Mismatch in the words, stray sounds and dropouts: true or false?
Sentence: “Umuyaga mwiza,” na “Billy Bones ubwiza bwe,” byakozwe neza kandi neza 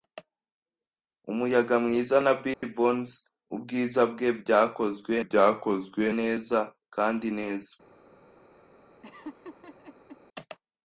true